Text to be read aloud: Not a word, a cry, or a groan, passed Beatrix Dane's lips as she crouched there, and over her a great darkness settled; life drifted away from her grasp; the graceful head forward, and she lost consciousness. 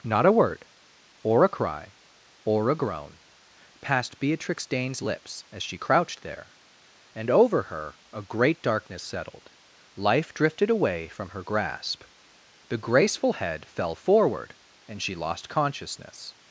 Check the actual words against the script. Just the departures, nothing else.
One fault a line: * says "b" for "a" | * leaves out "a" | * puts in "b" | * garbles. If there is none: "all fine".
* puts in "or"
* puts in "fell"